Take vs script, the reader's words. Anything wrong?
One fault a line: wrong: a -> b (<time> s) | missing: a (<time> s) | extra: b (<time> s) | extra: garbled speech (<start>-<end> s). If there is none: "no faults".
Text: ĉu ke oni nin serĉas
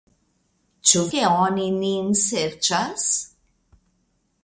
no faults